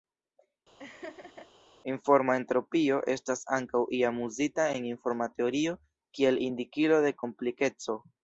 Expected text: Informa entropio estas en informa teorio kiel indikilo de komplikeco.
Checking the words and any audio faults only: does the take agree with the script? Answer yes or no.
no